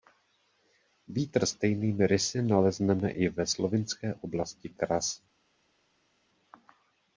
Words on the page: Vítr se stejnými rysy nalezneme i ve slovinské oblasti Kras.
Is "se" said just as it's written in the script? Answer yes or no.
no